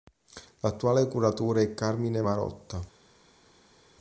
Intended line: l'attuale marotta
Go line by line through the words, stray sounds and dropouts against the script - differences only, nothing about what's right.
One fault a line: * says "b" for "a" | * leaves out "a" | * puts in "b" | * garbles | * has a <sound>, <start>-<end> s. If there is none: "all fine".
* puts in "curatore è carmine"